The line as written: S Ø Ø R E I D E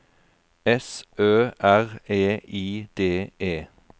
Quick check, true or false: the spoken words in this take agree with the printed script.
false